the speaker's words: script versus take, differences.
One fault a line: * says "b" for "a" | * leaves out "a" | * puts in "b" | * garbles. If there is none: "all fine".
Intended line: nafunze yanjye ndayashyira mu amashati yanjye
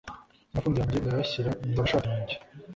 all fine